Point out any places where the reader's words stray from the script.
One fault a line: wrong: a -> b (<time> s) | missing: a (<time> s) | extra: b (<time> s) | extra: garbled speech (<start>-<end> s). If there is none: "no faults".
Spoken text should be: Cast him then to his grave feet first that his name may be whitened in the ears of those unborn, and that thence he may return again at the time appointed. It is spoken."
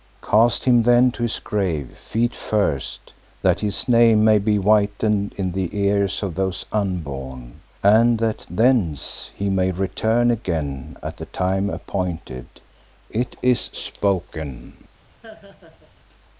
no faults